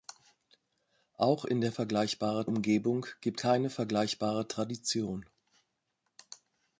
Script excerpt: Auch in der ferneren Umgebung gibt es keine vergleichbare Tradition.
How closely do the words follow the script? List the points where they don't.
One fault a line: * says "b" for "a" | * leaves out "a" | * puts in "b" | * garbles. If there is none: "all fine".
* says "vergleichbare" for "ferneren"
* leaves out "es"